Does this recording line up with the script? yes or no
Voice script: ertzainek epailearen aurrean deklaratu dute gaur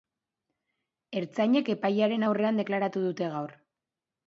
yes